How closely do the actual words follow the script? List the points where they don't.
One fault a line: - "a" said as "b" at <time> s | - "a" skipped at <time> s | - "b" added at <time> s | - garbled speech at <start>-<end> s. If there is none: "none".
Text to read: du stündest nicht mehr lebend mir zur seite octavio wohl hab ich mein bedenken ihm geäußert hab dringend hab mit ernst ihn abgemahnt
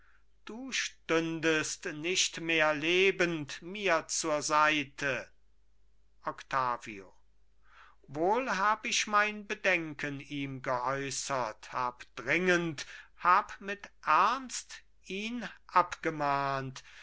none